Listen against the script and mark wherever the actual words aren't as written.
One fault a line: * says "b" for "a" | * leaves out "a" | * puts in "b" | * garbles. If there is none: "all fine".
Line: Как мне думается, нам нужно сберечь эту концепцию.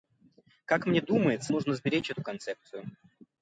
* leaves out "нам"